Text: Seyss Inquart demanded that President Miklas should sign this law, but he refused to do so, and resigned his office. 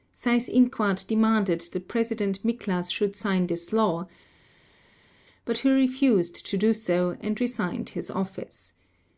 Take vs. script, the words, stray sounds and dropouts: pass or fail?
pass